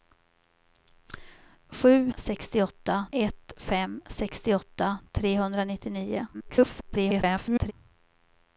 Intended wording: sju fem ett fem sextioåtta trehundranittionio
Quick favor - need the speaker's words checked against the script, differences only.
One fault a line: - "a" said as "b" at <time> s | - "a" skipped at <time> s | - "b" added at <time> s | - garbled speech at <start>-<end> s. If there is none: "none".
- "fem" said as "sextioåtta" at 2.1 s
- garbled speech at 6.3-7.7 s